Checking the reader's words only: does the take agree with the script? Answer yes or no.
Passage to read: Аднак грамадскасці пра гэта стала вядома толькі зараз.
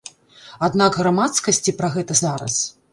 no